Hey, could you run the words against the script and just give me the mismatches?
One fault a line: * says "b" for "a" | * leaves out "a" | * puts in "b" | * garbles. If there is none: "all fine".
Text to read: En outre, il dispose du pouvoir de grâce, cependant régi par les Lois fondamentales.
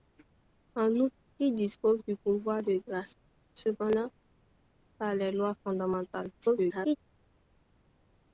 * leaves out "régi"
* garbles